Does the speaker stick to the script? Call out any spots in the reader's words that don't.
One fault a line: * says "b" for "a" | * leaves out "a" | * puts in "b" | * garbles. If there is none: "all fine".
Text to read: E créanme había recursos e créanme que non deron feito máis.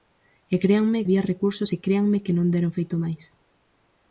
all fine